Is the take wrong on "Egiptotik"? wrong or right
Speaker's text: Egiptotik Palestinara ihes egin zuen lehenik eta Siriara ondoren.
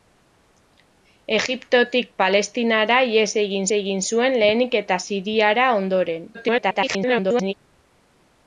right